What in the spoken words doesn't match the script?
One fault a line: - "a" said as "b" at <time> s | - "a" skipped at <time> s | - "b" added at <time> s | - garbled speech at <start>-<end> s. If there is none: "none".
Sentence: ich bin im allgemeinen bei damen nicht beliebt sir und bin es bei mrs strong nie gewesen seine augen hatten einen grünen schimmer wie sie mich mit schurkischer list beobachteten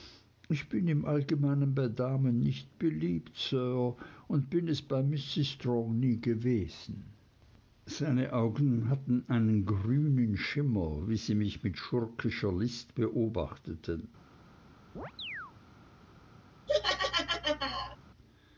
none